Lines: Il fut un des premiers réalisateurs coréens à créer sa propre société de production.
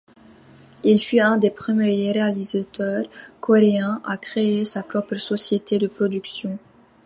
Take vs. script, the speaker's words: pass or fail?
pass